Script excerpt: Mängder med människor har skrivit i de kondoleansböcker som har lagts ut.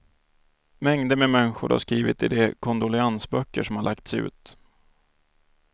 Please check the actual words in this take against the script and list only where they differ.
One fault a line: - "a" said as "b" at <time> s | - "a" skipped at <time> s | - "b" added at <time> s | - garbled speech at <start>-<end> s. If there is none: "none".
none